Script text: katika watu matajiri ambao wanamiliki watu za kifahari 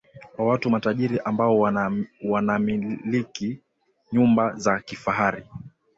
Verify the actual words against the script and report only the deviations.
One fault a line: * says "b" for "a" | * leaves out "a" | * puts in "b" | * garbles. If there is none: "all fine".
* says "kwa" for "katika"
* says "nyumba" for "watu"